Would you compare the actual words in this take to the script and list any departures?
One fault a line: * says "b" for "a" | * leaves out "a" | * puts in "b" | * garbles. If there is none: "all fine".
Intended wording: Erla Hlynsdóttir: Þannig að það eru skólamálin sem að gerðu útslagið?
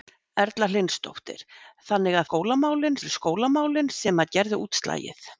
* says "skólamálin" for "það"